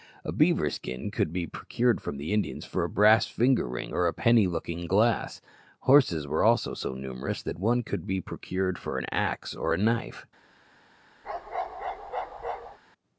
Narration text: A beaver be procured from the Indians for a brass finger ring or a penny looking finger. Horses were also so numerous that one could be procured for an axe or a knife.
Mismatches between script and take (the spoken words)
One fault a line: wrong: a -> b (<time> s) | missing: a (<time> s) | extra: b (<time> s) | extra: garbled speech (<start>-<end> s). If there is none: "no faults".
extra: skin could (0.7 s)
wrong: finger -> glass (4.9 s)